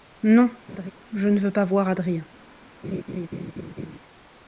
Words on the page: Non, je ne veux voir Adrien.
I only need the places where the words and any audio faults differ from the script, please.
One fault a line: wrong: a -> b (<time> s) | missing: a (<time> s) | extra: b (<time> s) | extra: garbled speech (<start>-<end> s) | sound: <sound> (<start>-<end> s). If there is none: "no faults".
sound: laugh (0.7-0.9 s)
extra: pas (1.5 s)
sound: laugh (2.8-4.0 s)